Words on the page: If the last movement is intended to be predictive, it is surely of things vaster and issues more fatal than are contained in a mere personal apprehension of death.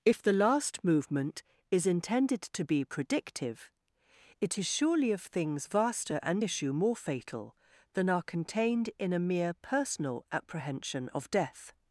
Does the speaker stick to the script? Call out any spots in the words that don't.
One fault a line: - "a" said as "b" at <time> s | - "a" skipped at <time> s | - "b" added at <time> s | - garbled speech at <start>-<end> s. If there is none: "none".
- "issues" said as "issue" at 6.4 s